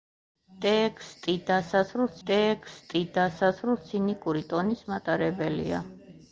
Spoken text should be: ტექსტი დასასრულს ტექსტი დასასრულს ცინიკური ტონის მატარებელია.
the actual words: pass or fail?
pass